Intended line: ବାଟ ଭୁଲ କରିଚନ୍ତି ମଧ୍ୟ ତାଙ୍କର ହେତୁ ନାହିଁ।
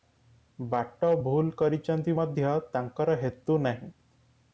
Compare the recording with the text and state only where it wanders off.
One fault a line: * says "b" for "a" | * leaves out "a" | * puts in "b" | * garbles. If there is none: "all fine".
all fine